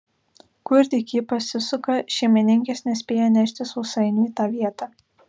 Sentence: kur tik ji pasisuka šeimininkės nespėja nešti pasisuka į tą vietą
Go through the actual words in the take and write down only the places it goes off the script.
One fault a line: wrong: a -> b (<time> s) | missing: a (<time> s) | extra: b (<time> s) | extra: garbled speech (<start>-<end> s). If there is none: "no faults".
wrong: pasisuka -> sausainių (3.7 s)